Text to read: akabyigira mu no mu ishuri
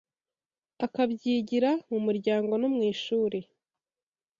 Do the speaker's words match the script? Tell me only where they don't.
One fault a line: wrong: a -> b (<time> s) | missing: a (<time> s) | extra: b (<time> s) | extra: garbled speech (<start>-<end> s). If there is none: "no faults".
extra: muryango (2.1 s)